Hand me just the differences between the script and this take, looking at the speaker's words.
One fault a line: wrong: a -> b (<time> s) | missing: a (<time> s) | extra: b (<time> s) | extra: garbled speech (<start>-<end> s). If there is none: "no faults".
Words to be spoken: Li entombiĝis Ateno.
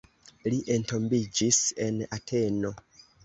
extra: en (1.9 s)